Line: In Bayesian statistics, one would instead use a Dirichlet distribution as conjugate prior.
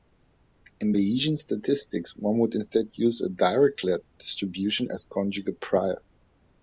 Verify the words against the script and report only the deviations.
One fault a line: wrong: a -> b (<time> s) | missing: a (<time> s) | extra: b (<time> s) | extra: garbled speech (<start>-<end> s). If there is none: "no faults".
no faults